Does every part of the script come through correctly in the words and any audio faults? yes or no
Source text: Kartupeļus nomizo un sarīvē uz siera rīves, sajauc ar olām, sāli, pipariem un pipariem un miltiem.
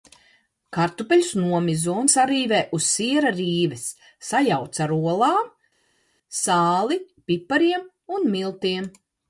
no